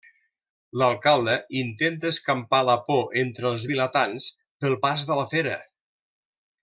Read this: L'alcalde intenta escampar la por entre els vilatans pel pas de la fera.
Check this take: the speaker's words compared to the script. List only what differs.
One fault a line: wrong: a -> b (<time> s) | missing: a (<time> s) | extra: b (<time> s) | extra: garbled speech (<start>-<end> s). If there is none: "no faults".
no faults